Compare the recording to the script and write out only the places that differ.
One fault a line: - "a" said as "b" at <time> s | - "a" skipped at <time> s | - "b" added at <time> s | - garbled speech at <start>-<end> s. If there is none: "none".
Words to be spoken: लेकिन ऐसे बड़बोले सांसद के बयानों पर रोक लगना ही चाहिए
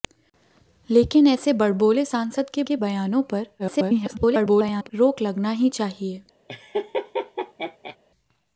- "के" added at 2.6 s
- garbled speech at 3.6-4.9 s